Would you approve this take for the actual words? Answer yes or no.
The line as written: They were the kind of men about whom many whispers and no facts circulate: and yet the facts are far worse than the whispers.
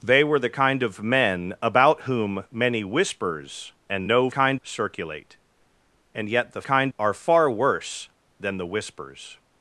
no